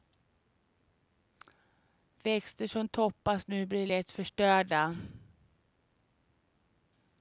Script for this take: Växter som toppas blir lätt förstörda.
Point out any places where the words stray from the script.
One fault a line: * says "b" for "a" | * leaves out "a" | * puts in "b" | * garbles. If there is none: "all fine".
* puts in "nu"